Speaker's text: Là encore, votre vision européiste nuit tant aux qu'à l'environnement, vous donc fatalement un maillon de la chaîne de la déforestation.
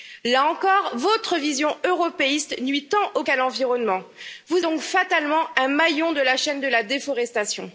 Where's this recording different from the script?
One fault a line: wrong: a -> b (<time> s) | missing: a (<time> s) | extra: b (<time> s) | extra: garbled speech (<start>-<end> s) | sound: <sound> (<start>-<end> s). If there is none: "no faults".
no faults